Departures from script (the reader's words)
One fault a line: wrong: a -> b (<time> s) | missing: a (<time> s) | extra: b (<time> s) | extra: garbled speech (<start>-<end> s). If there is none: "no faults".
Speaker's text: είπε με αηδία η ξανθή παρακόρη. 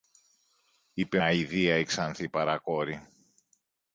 missing: με (1.2 s)